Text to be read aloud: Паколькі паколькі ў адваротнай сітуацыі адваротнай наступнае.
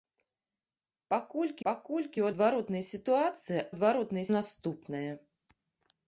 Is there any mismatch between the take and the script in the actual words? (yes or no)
no